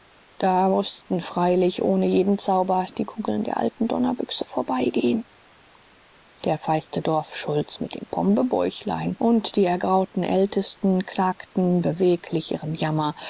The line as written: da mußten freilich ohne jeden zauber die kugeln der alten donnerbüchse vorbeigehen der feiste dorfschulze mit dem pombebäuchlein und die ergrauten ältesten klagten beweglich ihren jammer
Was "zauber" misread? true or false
false